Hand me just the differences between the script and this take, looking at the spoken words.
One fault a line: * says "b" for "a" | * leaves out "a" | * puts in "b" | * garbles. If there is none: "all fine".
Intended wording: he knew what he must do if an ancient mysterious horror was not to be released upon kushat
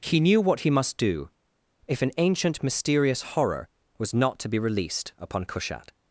all fine